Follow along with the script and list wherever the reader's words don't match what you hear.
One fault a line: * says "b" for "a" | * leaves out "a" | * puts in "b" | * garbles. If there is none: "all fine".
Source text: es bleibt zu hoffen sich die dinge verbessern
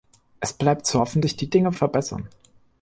all fine